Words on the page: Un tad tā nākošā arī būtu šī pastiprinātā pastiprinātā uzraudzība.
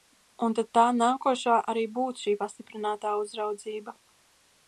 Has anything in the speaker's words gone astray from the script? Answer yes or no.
yes